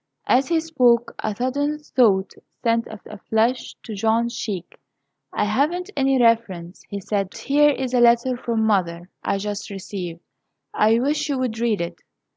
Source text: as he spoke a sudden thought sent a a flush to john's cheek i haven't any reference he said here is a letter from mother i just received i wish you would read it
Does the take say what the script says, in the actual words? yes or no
yes